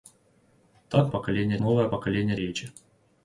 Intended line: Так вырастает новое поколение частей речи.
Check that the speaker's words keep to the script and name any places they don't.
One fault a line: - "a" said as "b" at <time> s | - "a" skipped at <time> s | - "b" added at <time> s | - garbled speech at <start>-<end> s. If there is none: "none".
- "вырастает" said as "поколение" at 1.1 s
- "частей" skipped at 2.4 s